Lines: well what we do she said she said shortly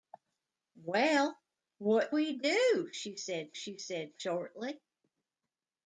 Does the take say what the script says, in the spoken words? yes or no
yes